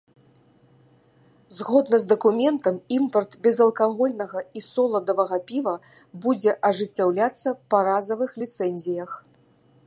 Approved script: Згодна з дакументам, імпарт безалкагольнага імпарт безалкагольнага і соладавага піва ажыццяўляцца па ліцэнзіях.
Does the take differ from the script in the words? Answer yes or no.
yes